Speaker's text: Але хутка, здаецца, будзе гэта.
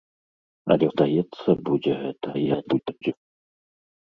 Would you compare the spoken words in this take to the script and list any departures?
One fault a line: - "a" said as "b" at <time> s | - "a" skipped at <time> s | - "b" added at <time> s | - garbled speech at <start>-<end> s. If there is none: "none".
- "хутка" skipped at 0.9 s
- garbled speech at 2.3-3.1 s